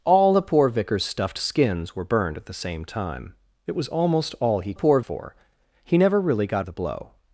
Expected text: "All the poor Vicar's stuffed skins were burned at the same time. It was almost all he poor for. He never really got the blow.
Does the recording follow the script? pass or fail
pass